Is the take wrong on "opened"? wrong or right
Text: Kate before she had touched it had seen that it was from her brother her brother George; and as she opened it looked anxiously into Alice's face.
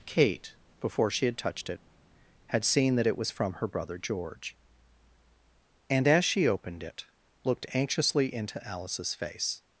right